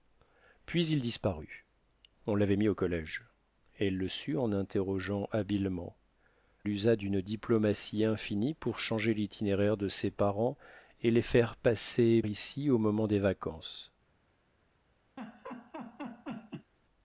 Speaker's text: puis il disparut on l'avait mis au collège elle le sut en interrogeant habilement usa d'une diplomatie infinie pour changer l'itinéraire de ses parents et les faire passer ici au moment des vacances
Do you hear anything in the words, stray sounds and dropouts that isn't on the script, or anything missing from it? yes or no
yes